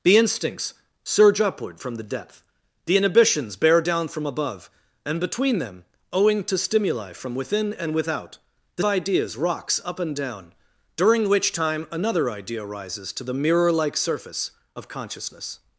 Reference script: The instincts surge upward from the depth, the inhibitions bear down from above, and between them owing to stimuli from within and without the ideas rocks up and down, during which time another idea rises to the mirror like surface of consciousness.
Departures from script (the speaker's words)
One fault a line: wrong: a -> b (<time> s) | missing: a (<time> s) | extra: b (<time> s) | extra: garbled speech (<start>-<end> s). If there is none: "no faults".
no faults